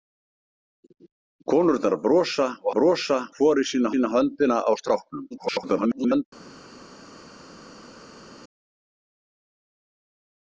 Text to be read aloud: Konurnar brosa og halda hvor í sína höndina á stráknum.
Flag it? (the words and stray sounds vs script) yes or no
yes